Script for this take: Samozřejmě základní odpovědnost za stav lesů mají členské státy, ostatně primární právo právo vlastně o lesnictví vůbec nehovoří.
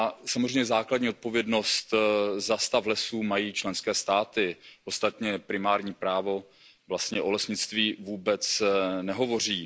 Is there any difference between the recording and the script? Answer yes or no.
yes